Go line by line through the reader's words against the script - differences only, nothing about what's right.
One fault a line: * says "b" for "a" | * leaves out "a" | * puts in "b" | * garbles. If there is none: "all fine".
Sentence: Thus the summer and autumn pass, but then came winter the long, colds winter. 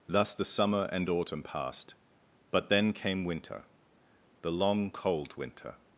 * says "passed" for "pass"
* says "cold" for "colds"